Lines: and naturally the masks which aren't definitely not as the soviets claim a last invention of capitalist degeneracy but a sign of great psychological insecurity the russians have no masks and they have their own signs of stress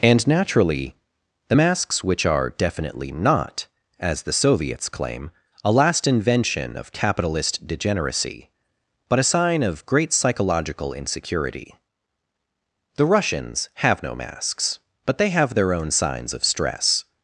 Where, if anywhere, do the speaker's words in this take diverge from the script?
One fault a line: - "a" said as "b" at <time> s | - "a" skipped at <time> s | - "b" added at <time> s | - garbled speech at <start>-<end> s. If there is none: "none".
- "aren't" said as "are" at 2.2 s
- "and" said as "but" at 15.1 s